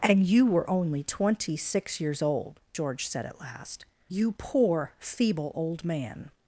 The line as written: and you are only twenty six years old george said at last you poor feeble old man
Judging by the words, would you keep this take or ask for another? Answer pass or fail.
fail